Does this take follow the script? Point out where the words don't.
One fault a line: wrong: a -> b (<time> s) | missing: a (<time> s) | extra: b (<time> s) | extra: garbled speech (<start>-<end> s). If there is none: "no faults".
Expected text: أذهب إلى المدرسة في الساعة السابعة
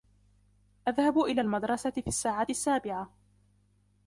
no faults